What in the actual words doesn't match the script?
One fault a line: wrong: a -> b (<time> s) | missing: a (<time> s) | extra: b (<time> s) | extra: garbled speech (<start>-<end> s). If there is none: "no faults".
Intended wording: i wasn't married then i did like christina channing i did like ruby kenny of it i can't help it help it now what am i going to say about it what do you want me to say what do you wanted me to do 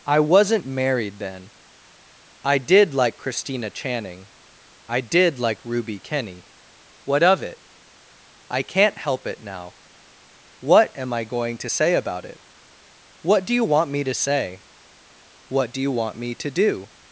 extra: what (7.0 s)
missing: help it (9.4 s)
wrong: wanted -> want (15.9 s)